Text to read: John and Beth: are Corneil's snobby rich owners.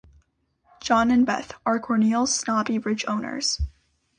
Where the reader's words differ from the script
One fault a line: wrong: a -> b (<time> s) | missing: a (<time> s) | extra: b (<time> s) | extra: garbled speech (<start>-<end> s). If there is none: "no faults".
no faults